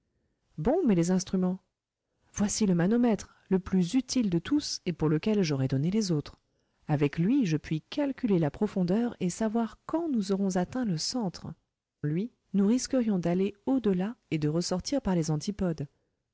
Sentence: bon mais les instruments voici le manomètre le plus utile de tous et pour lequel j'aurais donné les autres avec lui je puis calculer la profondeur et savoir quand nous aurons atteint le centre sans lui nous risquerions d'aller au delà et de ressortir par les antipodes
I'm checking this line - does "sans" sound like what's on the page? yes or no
no